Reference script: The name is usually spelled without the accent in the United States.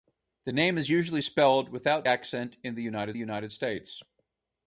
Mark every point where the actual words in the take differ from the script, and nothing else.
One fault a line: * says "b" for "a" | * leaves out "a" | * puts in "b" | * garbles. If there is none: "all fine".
* leaves out "the"
* puts in "United"